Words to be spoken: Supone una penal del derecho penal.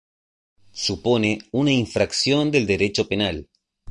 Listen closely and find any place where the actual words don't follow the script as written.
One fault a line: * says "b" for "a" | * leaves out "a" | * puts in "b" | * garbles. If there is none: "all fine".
* says "infracción" for "penal"